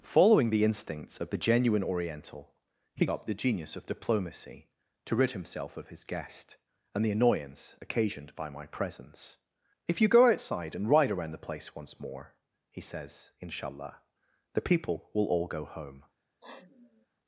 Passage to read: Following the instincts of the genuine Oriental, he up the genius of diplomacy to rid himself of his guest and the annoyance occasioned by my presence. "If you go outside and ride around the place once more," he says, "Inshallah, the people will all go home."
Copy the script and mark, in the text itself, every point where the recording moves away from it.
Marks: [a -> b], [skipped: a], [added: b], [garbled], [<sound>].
Following the instincts of the genuine Oriental, he up the genius of diplomacy to rid himself of his guest and the annoyance occasioned by my presence. "If you go outside and ride around the place once more," he says, "Inshallah, the people will all go home." [sniff]